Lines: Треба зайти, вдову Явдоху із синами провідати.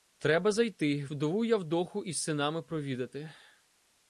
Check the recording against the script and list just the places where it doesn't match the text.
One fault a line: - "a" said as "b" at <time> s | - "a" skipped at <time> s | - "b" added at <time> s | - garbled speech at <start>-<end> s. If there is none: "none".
none